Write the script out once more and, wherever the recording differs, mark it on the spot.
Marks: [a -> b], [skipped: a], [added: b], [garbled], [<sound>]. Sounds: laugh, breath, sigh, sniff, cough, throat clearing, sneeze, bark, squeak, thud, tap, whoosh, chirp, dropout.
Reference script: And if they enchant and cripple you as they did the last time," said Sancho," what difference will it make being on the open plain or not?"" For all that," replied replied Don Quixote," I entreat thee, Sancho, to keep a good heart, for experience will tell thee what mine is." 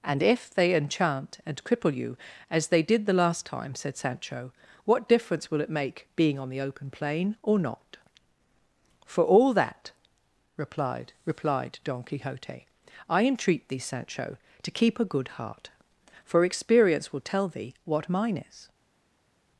And if they enchant and cripple you as they did the last time," said Sancho," what difference will it make being on the open plain or not?"" For all that," replied replied Don Quixote," I entreat thee, Sancho, to keep a good heart, for experience will tell thee what mine is."